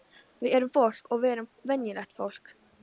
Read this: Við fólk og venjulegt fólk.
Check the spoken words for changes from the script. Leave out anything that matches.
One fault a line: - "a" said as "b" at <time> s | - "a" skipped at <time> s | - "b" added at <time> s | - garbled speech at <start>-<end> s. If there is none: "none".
- "erum" added at 0.6 s
- "við erum" added at 1.2 s